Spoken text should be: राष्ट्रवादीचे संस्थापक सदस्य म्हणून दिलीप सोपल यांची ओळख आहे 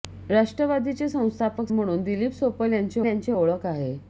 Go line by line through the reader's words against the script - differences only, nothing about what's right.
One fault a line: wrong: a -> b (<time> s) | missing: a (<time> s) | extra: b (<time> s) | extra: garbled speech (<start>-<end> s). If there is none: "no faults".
missing: सदस्य (1.7 s)
extra: यांची (3.1 s)